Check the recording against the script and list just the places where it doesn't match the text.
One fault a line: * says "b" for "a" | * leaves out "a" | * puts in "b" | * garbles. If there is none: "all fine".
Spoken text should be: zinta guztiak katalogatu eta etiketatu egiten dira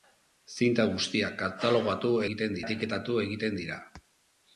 * says "egiten" for "eta"